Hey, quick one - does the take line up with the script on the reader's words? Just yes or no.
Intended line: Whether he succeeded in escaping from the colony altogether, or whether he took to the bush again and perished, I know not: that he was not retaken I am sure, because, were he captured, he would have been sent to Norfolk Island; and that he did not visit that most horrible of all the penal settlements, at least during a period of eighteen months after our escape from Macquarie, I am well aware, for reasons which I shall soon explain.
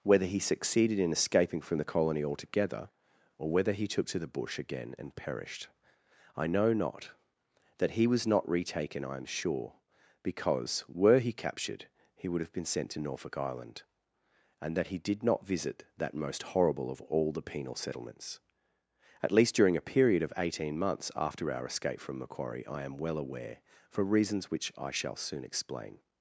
yes